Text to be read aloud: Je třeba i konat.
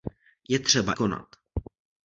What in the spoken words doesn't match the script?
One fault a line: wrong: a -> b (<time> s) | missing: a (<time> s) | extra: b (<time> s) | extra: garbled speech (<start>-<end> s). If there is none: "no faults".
missing: i (0.9 s)